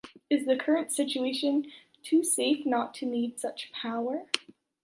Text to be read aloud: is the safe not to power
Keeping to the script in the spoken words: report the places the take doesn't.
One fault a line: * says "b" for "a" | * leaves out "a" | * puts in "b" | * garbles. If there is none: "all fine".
* puts in "current situation too"
* puts in "need such"